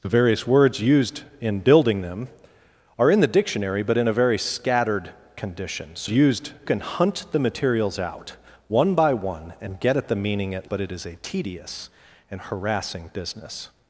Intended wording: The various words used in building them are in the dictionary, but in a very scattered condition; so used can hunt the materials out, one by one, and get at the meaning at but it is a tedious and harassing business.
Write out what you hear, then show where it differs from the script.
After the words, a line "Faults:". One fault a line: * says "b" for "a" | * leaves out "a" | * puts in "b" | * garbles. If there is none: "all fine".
The various words used in building them are in the dictionary, but in a very scattered condition; so used can hunt the materials out, one by one, and get at the meaning at but it is a tedious and harassing business.
Faults:
all fine